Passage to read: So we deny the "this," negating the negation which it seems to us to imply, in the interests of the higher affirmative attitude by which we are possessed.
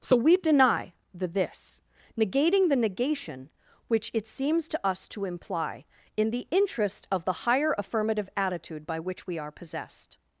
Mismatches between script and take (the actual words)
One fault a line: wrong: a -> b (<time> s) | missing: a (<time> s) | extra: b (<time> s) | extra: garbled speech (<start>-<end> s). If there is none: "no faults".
wrong: interests -> interest (6.5 s)